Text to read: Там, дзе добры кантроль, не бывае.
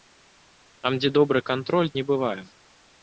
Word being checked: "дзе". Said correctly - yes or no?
yes